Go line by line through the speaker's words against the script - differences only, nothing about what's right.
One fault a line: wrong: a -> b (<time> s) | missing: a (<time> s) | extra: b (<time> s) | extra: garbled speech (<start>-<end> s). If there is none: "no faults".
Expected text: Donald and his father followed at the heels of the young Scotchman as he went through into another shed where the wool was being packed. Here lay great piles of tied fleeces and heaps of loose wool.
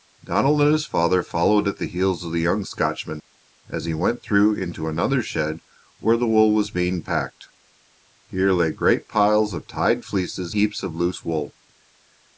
missing: and (10.6 s)